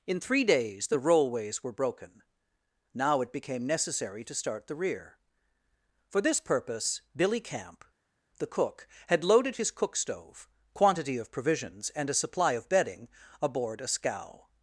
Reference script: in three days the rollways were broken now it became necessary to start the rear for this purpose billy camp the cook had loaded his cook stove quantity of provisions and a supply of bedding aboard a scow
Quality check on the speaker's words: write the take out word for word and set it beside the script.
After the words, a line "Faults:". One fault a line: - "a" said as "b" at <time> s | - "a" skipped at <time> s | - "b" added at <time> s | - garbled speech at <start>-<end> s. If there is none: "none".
in three days the rollways were broken now it became necessary to start the rear for this purpose billy camp the cook had loaded his cook stove quantity of provisions and a supply of bedding aboard a scow
Faults:
none